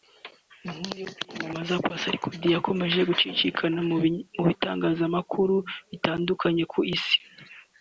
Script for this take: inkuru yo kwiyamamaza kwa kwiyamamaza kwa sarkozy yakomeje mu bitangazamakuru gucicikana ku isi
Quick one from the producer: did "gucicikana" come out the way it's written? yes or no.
no